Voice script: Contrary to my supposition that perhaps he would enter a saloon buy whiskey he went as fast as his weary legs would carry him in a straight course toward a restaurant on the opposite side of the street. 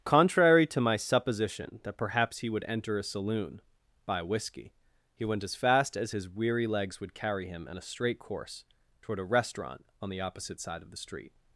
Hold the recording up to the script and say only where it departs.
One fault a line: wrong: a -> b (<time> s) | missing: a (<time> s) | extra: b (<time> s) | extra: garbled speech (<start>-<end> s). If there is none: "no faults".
no faults